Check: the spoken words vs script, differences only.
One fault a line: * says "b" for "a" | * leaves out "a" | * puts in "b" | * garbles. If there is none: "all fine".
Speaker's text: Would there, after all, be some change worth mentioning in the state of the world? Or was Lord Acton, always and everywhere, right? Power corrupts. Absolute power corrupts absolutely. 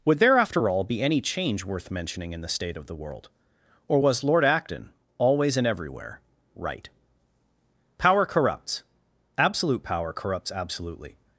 * says "any" for "some"